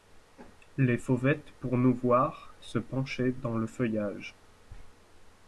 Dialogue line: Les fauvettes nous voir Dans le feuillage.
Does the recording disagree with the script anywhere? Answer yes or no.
yes